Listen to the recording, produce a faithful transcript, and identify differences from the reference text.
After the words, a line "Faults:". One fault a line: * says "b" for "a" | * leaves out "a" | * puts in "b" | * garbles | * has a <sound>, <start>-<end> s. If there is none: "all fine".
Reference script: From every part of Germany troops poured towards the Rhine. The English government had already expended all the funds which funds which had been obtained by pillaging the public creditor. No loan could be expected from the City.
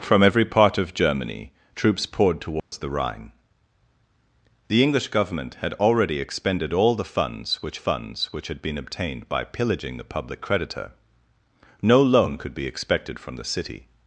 From every part of Germany troops poured towards the Rhine. The English government had already expended all the funds which funds which had been obtained by pillaging the public creditor. No loan could be expected from the City.
Faults:
* has a dropout, 2.6-2.7 s